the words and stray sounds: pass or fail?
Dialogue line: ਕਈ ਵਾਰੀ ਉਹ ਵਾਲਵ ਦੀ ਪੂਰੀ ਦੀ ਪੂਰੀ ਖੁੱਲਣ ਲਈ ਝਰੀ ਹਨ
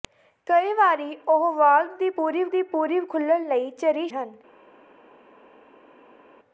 pass